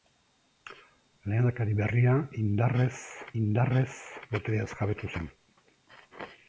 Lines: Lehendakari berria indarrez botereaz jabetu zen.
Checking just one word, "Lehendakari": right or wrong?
right